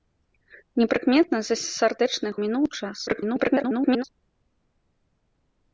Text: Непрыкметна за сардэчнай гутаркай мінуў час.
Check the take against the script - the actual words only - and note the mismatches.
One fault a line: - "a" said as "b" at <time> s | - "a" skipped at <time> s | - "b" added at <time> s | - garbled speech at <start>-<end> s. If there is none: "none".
- "гутаркай" skipped at 2.3 s
- garbled speech at 3.1-4.0 s